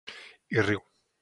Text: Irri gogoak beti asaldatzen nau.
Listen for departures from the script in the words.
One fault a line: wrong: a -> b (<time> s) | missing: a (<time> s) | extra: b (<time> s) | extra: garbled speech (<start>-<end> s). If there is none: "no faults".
missing: gogoak beti asaldatzen (0.8 s)